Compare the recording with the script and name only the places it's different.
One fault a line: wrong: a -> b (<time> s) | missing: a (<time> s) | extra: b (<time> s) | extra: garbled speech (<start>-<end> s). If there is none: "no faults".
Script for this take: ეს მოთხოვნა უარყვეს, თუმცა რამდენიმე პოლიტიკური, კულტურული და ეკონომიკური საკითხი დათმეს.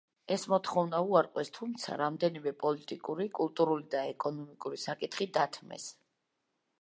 no faults